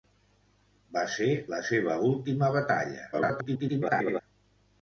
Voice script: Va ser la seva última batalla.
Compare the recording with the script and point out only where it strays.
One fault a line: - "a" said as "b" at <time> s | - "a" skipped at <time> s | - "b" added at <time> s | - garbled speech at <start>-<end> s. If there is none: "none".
- garbled speech at 3.1-4.2 s